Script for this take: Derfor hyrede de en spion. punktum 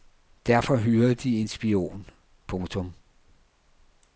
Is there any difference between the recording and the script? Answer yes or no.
no